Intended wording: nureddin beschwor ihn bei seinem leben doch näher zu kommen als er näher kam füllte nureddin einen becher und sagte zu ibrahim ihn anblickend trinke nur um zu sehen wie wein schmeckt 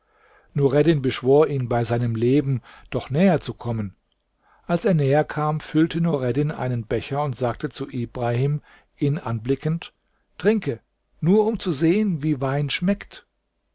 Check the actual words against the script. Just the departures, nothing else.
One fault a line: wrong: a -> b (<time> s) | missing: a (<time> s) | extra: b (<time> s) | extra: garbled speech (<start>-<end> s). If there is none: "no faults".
no faults